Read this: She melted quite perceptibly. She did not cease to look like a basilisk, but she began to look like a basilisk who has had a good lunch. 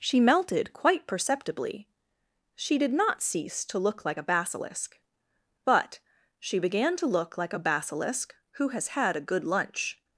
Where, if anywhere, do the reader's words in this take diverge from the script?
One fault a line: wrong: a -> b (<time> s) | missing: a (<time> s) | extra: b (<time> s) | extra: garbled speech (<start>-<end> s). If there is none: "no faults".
no faults